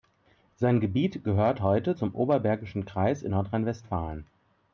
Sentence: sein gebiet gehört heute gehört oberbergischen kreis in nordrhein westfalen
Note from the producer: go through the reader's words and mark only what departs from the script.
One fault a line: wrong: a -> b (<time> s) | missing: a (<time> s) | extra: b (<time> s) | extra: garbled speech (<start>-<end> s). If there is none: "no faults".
wrong: gehört -> zum (1.9 s)